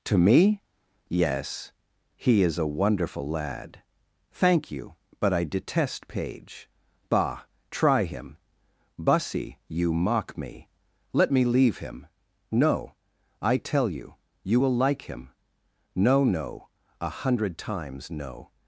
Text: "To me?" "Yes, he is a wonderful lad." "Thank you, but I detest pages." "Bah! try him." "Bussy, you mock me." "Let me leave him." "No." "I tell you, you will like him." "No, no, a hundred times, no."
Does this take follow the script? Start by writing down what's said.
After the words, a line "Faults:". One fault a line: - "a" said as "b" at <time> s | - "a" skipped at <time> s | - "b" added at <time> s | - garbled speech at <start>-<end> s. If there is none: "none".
"To me?" "Yes, he is a wonderful lad." "Thank you, but I detest page." "Bah! try him." "Bussy, you mock me." "Let me leave him." "No." "I tell you, you will like him." "No, no, a hundred times, no."
Faults:
- "pages" said as "page" at 6.1 s